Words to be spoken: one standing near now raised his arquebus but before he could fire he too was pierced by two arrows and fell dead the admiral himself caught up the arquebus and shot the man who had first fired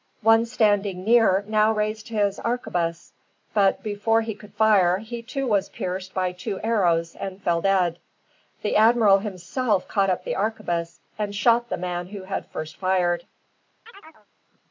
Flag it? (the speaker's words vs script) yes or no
no